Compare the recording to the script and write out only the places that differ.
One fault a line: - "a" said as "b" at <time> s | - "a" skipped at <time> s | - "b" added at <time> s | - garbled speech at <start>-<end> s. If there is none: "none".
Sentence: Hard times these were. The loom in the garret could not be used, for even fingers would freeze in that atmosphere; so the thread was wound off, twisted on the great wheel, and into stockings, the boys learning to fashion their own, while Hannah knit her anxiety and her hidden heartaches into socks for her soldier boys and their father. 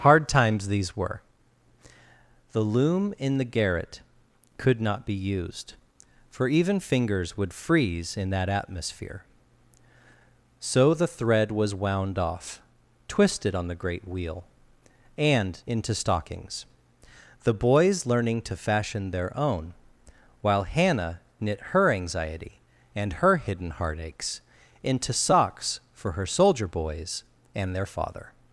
none